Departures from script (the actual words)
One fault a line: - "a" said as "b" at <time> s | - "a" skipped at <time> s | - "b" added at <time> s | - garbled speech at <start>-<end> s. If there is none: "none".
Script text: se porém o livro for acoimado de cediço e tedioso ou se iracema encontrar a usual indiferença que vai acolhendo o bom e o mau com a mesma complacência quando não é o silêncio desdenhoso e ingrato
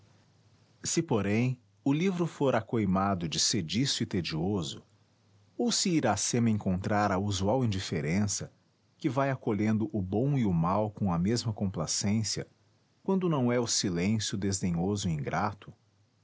none